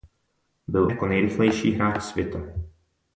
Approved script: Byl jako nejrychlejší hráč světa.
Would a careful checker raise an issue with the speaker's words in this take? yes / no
no